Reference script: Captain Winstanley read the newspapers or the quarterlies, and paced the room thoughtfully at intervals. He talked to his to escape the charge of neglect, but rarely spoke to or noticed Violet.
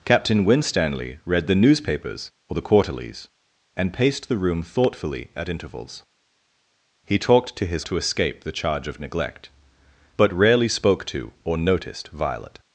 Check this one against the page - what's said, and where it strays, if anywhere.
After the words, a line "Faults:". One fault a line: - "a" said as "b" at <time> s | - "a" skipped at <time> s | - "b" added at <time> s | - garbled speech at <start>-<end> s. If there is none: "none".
Captain Winstanley read the newspapers or the quarterlies, and paced the room thoughtfully at intervals. He talked to his to escape the charge of neglect, but rarely spoke to or noticed Violet.
Faults:
none